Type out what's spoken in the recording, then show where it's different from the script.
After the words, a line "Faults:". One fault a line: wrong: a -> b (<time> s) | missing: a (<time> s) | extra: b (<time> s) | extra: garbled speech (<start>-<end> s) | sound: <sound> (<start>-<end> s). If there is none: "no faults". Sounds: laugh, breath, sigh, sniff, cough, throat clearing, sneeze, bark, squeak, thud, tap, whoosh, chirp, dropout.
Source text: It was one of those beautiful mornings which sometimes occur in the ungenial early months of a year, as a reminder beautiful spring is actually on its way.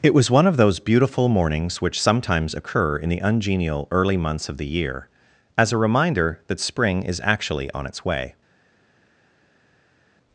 It was one of those beautiful mornings which sometimes occur in the ungenial early months of the year, as a reminder that spring is actually on its way.
Faults:
wrong: a -> the (4.6 s)
wrong: beautiful -> that (6.5 s)